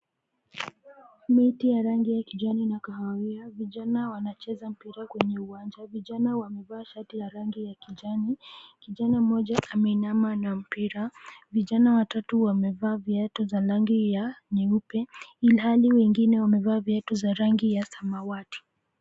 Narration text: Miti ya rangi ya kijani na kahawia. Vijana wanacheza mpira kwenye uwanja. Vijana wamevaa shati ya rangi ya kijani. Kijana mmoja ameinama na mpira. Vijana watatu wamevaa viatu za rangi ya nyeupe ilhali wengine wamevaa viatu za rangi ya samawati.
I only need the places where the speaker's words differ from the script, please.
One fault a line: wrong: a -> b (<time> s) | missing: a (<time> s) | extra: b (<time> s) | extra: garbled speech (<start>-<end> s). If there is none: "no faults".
no faults